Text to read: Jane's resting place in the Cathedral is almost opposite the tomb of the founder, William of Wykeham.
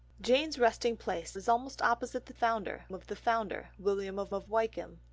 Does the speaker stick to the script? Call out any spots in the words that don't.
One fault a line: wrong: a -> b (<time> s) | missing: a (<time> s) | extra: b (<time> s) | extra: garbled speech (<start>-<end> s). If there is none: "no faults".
missing: in the Cathedral (1.4 s)
wrong: tomb -> founder (2.3 s)
extra: of (4.3 s)